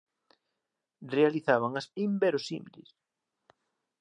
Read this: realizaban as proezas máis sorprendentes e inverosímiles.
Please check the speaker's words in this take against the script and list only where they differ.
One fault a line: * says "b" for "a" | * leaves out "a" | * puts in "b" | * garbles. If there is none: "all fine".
* leaves out "proezas máis sorprendentes"